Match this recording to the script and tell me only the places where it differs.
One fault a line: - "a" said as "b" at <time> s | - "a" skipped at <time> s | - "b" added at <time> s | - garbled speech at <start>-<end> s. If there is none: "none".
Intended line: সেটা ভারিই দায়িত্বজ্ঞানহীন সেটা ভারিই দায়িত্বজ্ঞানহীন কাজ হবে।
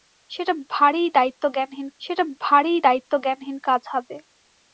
none